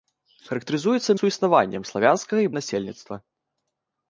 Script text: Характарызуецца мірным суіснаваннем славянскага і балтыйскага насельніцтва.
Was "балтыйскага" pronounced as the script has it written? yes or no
no